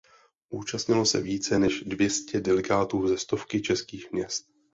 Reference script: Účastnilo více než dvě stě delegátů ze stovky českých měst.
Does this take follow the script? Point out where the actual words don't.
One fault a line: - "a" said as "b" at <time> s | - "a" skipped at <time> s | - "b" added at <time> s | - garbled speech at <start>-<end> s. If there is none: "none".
- "se" added at 1.1 s